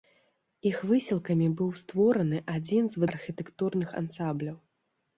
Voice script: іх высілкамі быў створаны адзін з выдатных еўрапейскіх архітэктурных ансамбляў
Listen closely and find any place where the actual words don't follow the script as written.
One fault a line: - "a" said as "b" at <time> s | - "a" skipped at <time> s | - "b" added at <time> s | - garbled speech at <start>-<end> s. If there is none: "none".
- "выдатных еўрапейскіх" skipped at 3.0 s